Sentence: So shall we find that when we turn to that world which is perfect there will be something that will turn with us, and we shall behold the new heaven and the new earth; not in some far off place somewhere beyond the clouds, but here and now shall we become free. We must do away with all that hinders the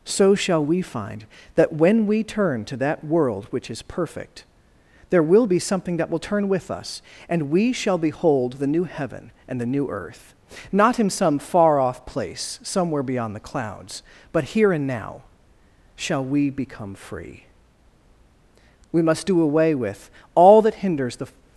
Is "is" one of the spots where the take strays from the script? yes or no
no